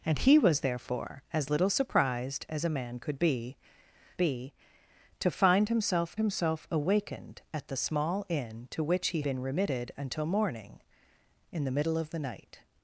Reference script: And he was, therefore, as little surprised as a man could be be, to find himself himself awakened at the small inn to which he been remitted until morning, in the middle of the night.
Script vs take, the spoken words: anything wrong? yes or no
no